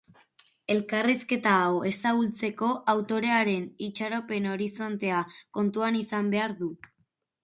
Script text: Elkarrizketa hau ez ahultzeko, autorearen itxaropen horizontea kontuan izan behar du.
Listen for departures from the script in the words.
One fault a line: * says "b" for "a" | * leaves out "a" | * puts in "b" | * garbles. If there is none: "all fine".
all fine